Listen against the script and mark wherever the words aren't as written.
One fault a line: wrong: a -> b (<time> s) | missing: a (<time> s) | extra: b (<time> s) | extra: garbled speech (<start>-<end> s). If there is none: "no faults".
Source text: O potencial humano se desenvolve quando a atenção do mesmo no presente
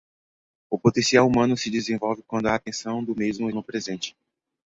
no faults